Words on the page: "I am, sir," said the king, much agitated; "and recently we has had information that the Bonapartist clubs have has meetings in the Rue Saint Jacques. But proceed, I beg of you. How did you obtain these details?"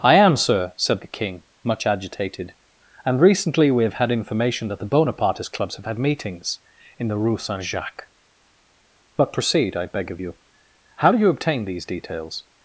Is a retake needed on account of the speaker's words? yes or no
yes